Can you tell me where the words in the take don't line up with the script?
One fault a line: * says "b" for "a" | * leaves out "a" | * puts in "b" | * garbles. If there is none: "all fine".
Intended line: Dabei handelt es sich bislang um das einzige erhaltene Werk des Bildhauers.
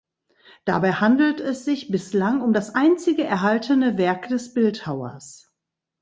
all fine